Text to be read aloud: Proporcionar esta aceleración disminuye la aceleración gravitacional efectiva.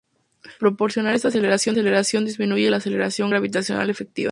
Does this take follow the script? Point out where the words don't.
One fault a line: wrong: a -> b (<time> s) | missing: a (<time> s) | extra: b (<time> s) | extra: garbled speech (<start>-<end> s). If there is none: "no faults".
no faults